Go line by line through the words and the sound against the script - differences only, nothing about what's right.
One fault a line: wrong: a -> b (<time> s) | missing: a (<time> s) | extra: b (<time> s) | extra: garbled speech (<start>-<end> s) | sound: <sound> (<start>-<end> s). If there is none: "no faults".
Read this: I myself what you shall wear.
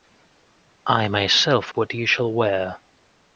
no faults